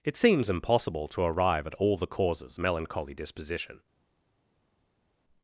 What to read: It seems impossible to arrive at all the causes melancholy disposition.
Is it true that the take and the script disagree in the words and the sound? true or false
false